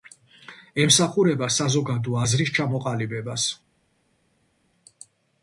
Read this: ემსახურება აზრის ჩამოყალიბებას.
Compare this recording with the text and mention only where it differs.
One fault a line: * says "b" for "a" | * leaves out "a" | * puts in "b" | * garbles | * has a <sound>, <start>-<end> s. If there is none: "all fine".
* puts in "საზოგადო"